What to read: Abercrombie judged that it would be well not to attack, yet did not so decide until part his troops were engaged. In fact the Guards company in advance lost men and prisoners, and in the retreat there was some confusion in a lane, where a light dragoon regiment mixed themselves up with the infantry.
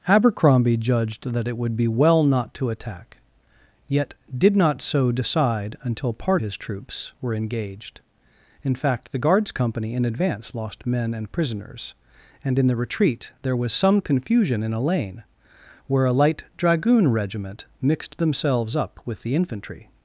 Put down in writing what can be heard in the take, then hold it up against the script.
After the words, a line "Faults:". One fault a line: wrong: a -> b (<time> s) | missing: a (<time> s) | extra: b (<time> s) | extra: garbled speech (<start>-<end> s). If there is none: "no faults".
Abercrombie judged that it would be well not to attack, yet did not so decide until part his troops were engaged. In fact the Guards company in advance lost men and prisoners, and in the retreat there was some confusion in a lane, where a light dragoon regiment mixed themselves up with the infantry.
Faults:
no faults